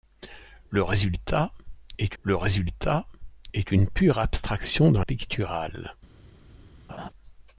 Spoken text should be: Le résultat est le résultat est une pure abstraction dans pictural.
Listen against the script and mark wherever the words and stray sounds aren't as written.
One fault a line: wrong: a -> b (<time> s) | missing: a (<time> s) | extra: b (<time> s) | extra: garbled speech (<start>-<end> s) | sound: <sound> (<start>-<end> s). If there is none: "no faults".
sound: laugh (6.9-7.1 s)